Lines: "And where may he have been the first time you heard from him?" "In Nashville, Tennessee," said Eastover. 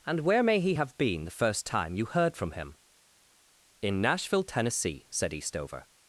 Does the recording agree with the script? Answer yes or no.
yes